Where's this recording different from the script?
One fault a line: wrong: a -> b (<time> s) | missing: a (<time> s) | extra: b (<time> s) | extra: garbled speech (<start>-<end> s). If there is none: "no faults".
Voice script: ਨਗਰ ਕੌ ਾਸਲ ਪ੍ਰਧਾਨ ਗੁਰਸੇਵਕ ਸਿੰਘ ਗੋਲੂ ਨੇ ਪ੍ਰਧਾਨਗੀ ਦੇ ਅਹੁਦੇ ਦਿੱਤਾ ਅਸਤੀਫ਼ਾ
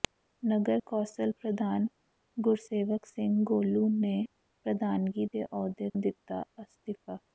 no faults